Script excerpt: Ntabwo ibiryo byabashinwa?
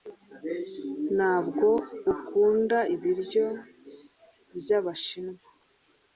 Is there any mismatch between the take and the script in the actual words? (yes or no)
yes